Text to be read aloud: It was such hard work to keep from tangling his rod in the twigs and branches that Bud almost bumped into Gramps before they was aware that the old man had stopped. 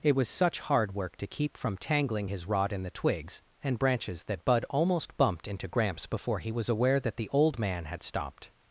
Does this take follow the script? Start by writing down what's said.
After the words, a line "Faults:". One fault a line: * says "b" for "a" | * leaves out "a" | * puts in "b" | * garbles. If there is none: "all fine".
It was such hard work to keep from tangling his rod in the twigs and branches that Bud almost bumped into Gramps before he was aware that the old man had stopped.
Faults:
* says "he" for "they"